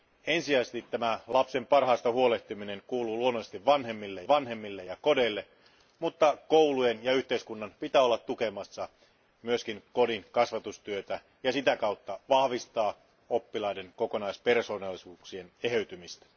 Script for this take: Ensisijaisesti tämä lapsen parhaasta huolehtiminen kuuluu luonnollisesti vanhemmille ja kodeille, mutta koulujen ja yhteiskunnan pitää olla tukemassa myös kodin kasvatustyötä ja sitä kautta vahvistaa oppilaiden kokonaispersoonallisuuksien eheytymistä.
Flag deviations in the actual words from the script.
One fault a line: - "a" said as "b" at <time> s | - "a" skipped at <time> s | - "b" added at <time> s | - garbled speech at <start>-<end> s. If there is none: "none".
- "vanhemmille" added at 4.3 s